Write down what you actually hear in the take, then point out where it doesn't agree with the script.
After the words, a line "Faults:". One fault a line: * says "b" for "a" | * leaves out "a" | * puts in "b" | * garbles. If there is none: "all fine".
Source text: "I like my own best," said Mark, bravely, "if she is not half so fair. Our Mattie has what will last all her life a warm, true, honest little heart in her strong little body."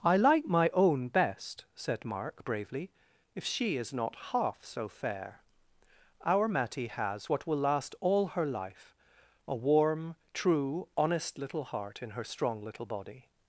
"I like my own best," said Mark, bravely, "if she is not half so fair. Our Mattie has what will last all her life a warm, true, honest little heart in her strong little body."
Faults:
all fine